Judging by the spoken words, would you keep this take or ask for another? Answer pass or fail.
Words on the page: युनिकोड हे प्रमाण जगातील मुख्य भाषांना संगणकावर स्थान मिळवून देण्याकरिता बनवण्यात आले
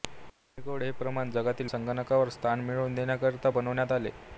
fail